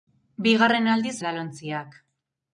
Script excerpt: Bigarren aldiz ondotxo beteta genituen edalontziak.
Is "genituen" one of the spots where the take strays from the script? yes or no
yes